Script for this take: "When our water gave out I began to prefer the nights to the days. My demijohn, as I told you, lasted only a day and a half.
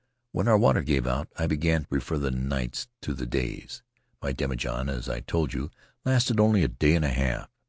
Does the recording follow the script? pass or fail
pass